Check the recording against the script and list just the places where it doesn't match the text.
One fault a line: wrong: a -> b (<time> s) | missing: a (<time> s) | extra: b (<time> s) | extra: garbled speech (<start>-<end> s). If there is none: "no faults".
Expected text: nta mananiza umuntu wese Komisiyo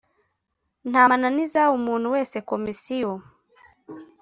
no faults